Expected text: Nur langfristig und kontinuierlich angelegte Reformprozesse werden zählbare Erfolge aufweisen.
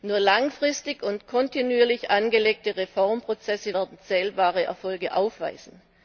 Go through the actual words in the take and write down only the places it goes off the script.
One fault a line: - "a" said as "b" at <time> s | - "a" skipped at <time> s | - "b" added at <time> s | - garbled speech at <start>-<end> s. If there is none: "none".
none